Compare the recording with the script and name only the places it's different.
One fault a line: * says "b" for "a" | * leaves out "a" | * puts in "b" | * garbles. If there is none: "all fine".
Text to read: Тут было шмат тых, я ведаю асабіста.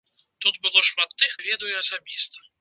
all fine